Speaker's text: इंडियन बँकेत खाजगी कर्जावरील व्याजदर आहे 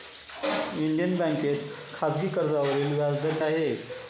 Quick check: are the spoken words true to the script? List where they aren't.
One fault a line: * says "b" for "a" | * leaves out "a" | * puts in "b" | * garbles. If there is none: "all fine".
all fine